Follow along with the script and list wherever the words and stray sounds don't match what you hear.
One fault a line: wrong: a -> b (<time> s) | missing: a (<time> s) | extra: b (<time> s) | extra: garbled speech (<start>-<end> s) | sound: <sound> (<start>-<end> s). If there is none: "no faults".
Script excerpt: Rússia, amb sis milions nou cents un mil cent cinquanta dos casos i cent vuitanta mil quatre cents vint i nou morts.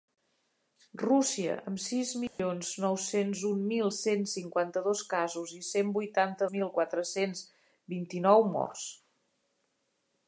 sound: dropout (2.3-2.4 s)